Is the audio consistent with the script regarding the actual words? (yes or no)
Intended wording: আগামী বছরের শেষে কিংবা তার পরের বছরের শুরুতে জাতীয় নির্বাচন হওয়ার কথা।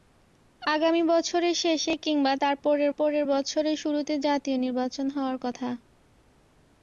no